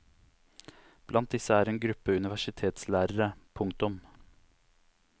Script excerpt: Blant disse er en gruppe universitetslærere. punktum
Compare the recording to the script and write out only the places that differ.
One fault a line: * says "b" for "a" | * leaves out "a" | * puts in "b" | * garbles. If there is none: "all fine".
all fine